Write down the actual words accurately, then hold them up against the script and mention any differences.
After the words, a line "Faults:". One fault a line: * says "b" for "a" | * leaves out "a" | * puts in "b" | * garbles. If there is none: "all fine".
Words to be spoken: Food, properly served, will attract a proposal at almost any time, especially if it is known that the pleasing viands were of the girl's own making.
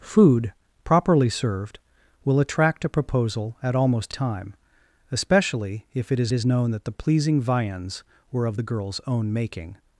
Food, properly served, will attract a proposal at almost time, especially if it is is known that the pleasing viands were of the girl's own making.
Faults:
* leaves out "any"
* puts in "is"